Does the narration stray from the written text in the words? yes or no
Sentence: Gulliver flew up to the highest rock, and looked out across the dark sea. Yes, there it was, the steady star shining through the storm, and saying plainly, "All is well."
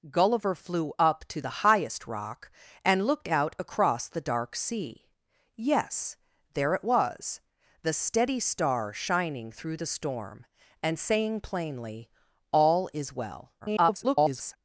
yes